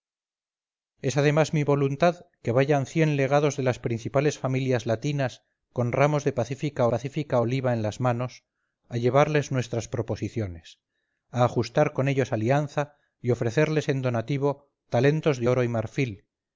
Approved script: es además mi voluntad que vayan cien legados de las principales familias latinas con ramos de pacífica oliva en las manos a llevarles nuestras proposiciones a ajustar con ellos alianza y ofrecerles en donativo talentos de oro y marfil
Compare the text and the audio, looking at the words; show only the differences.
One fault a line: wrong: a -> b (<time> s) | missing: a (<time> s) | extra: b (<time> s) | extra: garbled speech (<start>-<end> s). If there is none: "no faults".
extra: pacífica (6.9 s)